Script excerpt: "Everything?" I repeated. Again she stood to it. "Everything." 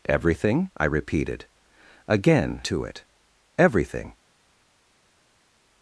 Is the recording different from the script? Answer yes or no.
yes